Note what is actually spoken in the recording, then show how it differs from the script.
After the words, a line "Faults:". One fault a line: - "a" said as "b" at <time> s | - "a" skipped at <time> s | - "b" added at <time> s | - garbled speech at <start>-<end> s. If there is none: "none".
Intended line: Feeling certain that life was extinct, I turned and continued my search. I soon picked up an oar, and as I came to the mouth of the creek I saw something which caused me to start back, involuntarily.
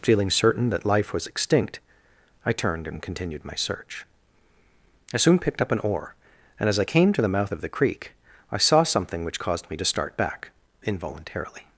Feeling certain that life was extinct, I turned and continued my search. I soon picked up an oar, and as I came to the mouth of the creek I saw something which caused me to start back, involuntarily.
Faults:
none